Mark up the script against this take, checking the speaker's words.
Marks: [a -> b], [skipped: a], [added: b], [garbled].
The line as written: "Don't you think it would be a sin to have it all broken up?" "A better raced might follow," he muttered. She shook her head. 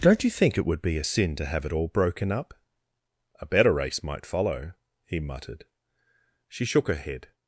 "Don't you think it would be a sin to have it all broken up?" "A better [raced -> race] might follow," he muttered. She shook her head.